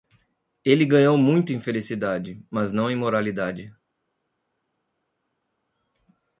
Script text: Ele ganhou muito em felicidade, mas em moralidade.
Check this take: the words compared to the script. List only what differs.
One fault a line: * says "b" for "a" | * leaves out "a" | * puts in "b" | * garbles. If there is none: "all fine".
* puts in "não"